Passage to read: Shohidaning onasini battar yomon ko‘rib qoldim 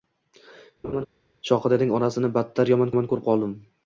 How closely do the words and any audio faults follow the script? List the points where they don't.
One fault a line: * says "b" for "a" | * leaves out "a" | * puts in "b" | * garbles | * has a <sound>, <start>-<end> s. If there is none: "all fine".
* has a laugh, 0.8-1.1 s
* puts in "yomon"